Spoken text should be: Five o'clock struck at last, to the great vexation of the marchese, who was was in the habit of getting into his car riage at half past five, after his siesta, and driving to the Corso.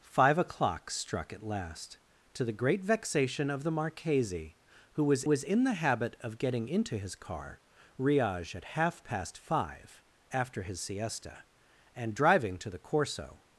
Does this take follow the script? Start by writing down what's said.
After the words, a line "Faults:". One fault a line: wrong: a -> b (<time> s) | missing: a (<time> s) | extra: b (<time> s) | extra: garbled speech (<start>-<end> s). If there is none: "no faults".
Five o'clock struck at last, to the great vexation of the marchese, who was was in the habit of getting into his car riage at half past five, after his siesta, and driving to the Corso.
Faults:
no faults